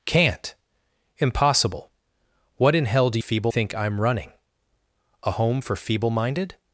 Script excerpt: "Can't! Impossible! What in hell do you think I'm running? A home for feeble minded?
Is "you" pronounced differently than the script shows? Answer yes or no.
yes